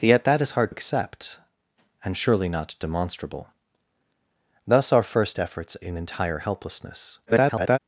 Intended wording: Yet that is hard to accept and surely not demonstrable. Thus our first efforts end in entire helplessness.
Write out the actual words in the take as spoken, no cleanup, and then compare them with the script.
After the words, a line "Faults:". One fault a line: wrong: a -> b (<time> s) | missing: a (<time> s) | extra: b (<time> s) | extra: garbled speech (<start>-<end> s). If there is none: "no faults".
Yet that is hard accept and surely not demonstrable. Thus our first efforts in entire helplessness. [garbled]
Faults:
missing: to (0.7 s)
missing: end (5.8 s)
extra: garbled speech (7.3-7.8 s)